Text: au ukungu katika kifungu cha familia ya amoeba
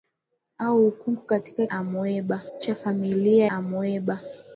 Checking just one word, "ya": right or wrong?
wrong